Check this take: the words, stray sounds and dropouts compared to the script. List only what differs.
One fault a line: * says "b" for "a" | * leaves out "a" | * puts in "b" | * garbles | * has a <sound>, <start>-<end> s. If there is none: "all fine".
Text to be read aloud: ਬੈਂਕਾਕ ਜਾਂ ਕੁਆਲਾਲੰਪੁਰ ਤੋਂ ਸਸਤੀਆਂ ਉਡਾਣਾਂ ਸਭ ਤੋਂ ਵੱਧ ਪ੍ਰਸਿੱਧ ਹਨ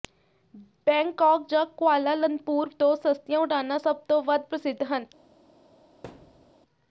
* has a thud, 6.0-6.5 s